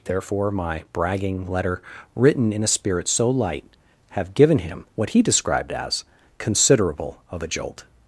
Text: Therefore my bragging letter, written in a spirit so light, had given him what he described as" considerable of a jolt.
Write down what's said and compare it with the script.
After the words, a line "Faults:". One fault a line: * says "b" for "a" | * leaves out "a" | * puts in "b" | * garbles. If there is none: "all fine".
Therefore my bragging letter, written in a spirit so light, have given him what he described as" considerable of a jolt.
Faults:
* says "have" for "had"